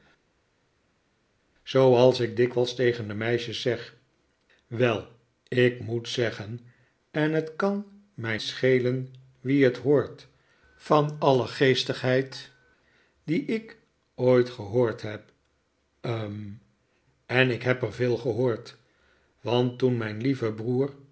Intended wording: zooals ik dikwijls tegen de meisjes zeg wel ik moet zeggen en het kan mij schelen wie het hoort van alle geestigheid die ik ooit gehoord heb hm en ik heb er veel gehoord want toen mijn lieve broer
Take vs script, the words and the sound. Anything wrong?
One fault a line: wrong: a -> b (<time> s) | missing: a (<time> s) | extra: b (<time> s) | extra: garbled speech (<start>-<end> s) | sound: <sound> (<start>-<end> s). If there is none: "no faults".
no faults